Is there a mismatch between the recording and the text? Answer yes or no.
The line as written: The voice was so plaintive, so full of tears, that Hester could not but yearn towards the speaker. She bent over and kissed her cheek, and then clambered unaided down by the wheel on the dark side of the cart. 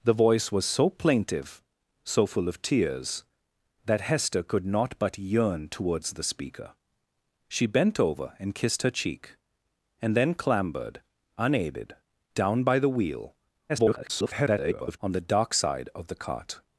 yes